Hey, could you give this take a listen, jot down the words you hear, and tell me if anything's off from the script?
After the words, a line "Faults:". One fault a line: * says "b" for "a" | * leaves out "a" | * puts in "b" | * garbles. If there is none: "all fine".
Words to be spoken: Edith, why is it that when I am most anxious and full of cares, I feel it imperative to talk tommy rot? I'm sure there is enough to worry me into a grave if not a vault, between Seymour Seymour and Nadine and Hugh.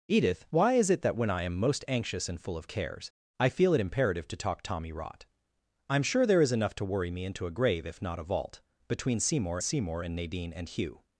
Edith, why is it that when I am most anxious and full of cares, I feel it imperative to talk tommy rot? I'm sure there is enough to worry me into a grave if not a vault, between Seymour Seymour and Nadine and Hugh.
Faults:
all fine